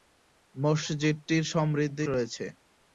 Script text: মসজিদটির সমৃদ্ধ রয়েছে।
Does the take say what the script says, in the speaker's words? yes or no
yes